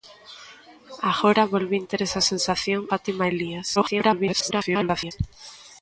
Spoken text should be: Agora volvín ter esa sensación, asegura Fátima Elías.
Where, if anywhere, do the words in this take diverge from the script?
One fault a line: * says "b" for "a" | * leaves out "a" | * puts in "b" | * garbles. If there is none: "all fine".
* leaves out "asegura"
* garbles